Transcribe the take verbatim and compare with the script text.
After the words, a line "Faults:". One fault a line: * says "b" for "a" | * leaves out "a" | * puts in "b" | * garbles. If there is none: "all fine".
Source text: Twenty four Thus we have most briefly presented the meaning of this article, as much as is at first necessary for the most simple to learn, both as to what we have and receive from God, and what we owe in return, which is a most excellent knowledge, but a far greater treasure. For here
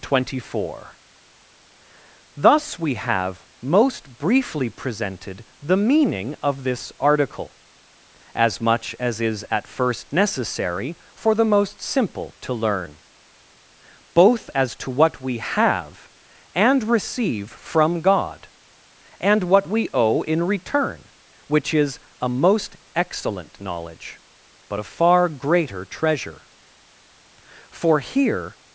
Twenty four Thus we have most briefly presented the meaning of this article, as much as is at first necessary for the most simple to learn, both as to what we have and receive from God, and what we owe in return, which is a most excellent knowledge, but a far greater treasure. For here
Faults:
all fine